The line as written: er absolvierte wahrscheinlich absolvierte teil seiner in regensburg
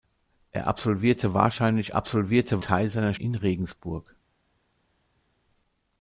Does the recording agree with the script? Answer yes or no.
yes